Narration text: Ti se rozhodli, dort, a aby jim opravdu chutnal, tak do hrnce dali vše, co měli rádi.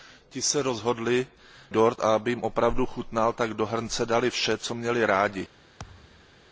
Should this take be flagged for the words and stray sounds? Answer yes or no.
yes